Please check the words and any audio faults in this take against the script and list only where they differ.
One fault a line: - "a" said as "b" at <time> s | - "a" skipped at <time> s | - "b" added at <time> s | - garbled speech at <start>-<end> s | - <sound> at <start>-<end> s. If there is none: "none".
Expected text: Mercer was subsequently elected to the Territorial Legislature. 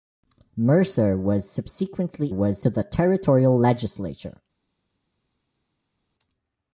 - "elected" said as "was" at 2.3 s